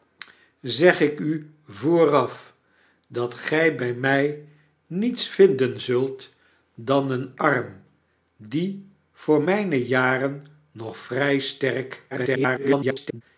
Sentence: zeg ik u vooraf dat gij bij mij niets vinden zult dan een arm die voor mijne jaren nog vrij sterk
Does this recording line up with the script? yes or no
no